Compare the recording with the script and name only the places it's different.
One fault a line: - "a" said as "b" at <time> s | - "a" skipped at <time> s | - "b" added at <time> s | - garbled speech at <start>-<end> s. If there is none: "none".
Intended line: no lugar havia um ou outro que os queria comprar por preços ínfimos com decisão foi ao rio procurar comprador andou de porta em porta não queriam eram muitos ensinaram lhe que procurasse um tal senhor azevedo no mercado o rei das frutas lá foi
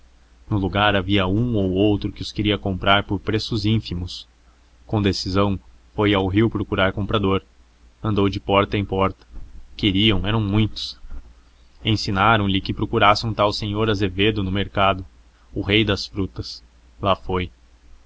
- "não" skipped at 9.3 s